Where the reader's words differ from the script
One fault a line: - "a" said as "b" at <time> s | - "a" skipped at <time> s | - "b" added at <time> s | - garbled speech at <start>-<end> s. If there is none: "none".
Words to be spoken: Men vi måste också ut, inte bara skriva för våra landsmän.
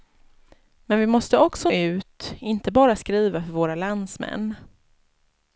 none